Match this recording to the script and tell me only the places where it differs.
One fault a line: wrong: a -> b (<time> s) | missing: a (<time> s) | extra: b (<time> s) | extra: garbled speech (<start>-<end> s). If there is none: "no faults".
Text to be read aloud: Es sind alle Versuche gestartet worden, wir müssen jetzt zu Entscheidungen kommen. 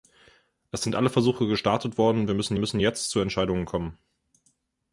extra: müssen (2.6 s)